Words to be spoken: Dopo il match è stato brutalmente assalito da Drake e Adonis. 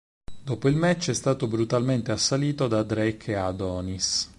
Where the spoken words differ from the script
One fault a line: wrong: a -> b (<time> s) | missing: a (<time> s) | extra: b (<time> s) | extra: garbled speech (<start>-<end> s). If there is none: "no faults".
no faults